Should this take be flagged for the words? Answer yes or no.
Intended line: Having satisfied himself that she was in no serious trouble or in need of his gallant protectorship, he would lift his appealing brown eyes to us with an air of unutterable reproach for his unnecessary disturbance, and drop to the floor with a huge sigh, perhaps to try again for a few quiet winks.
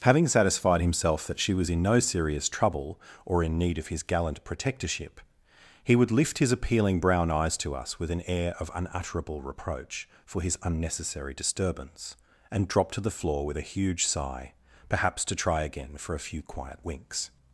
no